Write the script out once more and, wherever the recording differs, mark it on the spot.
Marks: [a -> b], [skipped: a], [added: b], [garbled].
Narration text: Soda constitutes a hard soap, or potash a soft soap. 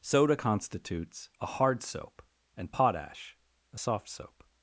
Soda constitutes a hard soap, [or -> and] potash a soft soap.